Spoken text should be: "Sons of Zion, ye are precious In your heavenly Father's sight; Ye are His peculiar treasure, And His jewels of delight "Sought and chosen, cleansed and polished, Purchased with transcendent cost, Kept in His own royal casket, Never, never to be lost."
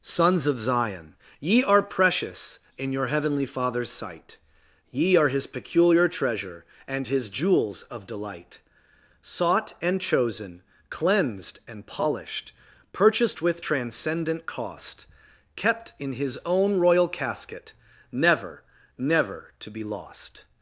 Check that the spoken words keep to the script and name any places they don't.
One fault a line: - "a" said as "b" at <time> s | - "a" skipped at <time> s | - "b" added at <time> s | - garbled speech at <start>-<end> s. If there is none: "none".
none